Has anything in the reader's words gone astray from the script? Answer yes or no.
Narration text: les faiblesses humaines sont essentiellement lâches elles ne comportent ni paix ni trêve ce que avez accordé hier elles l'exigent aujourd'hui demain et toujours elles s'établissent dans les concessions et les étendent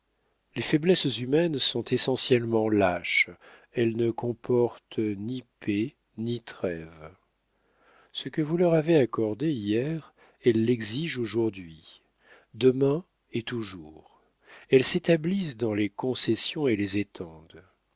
yes